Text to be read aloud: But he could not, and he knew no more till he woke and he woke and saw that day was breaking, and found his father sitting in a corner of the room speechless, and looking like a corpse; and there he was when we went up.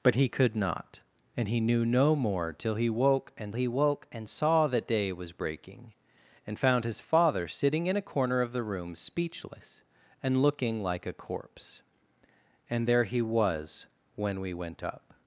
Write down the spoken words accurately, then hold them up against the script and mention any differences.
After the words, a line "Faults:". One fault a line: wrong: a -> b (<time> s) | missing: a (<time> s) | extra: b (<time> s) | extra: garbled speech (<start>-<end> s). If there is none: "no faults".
But he could not, and he knew no more till he woke and he woke and saw that day was breaking, and found his father sitting in a corner of the room speechless, and looking like a corpse; and there he was when we went up.
Faults:
no faults